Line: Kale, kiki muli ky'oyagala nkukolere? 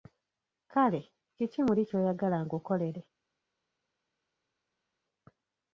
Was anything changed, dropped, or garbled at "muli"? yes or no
no